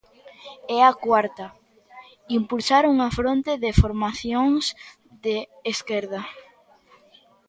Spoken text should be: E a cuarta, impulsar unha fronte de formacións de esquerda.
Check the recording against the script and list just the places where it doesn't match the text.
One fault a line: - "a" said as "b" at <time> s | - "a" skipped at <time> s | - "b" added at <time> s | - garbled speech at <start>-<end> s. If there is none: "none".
none